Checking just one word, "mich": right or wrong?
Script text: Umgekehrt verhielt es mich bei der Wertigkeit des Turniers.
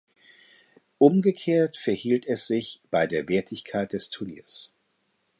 wrong